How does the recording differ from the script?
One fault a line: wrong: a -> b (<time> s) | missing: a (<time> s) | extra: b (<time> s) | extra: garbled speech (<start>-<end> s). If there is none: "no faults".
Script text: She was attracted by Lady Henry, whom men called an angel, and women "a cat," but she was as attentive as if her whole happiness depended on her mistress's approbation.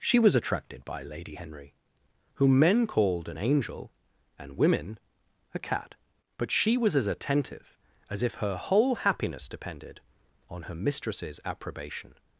no faults